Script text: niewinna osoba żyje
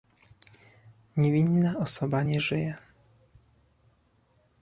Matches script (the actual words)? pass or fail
fail